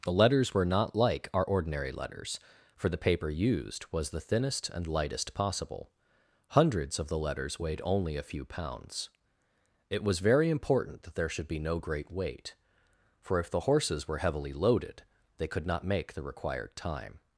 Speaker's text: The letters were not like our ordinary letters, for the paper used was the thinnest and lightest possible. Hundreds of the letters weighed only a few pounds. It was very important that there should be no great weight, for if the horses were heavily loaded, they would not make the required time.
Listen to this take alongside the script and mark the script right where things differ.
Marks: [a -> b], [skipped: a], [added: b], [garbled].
The letters were not like our ordinary letters, for the paper used was the thinnest and lightest possible. Hundreds of the letters weighed only a few pounds. It was very important that there should be no great weight, for if the horses were heavily loaded, they [would -> could] not make the required time.